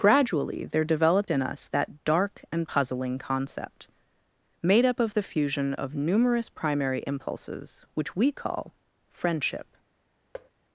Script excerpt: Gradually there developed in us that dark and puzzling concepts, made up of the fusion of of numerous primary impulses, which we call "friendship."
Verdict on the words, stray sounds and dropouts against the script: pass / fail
fail